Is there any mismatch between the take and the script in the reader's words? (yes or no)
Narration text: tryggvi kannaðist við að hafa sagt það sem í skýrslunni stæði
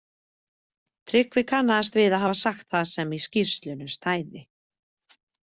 no